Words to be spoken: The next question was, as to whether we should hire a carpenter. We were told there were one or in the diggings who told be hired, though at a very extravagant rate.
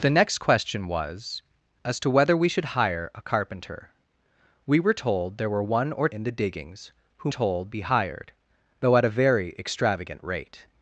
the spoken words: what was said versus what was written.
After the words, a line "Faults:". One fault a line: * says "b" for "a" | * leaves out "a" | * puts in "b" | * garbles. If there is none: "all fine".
The next question was, as to whether we should hire a carpenter. We were told there were one or in the diggings who told be hired, though at a very extravagant rate.
Faults:
all fine